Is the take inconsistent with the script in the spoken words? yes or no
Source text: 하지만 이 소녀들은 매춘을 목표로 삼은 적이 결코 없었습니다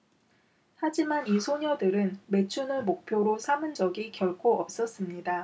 no